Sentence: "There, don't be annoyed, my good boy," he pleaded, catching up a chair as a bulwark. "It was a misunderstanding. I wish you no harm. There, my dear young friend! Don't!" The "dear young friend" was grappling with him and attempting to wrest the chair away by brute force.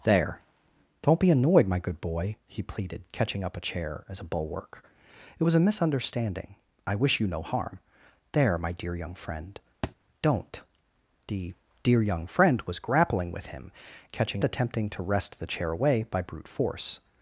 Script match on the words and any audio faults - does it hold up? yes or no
no